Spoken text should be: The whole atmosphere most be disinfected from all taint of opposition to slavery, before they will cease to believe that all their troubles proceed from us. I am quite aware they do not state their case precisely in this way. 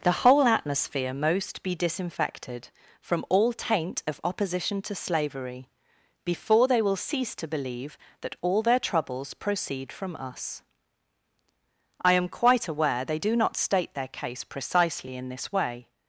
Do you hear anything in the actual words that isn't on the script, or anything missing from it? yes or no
no